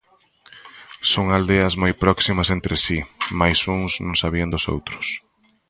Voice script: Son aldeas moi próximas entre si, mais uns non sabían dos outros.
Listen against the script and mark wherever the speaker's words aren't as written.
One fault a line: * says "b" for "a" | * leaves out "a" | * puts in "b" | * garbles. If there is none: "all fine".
all fine